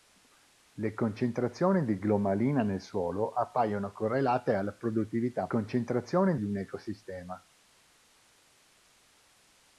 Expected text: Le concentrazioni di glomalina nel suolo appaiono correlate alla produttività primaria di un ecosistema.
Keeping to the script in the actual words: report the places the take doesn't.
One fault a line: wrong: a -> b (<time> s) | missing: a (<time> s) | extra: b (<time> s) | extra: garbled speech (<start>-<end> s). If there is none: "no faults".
wrong: primaria -> concentrazioni (5.5 s)